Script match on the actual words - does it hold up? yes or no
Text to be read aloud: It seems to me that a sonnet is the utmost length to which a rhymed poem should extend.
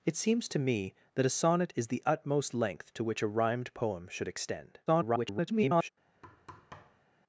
no